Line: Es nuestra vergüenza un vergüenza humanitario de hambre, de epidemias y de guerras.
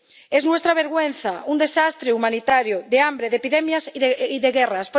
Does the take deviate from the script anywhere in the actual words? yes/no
yes